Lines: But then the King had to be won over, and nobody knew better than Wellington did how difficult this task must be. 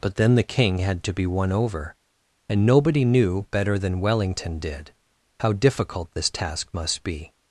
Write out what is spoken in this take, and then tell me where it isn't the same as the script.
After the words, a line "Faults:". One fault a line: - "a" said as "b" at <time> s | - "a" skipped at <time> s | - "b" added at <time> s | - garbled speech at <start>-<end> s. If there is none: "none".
But then the King had to be won over, and nobody knew better than Wellington did how difficult this task must be.
Faults:
none